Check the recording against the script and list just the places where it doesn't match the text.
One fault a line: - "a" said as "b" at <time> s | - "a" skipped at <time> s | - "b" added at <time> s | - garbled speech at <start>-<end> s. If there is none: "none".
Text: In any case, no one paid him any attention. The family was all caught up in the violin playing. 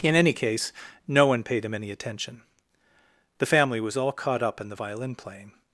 none